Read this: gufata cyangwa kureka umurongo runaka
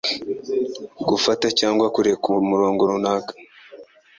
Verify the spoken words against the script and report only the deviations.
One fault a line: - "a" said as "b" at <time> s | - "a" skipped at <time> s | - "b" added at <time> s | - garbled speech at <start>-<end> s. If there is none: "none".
none